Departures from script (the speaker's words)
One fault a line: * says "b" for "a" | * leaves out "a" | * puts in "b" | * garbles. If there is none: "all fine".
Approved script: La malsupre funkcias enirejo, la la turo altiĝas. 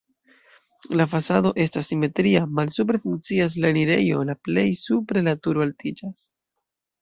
* puts in "fasado estas simetria"
* puts in "la"
* puts in "plej supre"